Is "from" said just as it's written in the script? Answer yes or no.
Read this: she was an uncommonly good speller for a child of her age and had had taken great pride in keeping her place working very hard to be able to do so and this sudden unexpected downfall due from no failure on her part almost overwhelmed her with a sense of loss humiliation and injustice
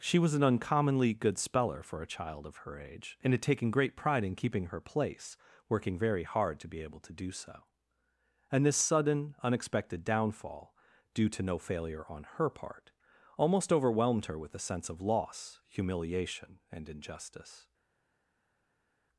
no